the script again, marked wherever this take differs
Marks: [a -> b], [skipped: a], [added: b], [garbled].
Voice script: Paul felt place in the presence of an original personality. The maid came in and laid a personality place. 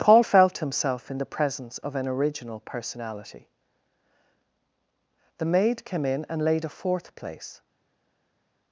Paul felt [place -> himself] in the presence of an original personality. The maid came in and laid a [personality -> fourth] place.